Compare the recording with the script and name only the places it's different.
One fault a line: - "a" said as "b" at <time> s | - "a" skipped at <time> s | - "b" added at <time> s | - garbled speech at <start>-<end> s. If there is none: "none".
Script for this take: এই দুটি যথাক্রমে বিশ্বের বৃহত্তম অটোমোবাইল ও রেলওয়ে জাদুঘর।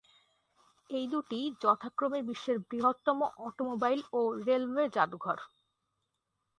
none